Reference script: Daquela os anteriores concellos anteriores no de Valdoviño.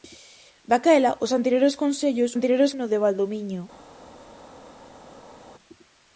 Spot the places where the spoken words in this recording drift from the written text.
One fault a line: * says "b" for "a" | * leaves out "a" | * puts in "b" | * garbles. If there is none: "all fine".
all fine